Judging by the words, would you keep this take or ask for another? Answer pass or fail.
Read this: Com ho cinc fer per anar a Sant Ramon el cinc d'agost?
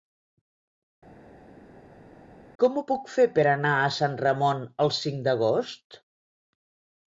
fail